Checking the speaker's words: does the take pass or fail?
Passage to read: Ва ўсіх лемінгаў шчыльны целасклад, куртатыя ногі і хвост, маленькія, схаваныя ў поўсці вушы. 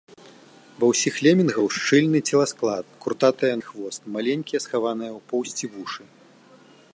fail